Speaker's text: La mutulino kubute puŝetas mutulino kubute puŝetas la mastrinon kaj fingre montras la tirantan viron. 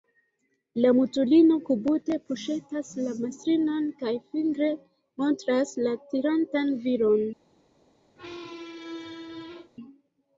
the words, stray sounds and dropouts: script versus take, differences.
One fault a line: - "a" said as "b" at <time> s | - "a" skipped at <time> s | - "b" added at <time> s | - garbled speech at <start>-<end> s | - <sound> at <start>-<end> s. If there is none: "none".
- "mutulino kubute puŝetas" skipped at 2.9 s
- squeak at 8.2-9.7 s